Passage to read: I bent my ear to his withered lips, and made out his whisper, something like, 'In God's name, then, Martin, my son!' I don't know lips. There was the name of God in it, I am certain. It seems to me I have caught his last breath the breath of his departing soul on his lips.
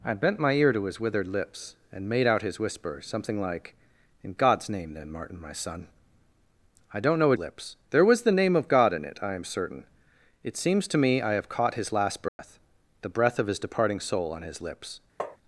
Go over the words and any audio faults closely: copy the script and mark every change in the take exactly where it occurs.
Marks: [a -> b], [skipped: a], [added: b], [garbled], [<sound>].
I bent my ear to his withered lips, and made out his whisper, something like, 'In God's name, then, Martin, my son!' I don't know lips. There was the name of God in it, I am certain. It seems to me I have caught his last breath [dropout] the breath of his departing soul on his lips. [tap]